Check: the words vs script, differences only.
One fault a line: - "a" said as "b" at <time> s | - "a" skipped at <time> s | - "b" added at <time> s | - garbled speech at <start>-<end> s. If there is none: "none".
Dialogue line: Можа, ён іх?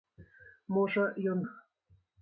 none